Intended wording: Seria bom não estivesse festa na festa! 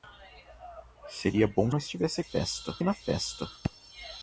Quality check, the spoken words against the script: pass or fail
pass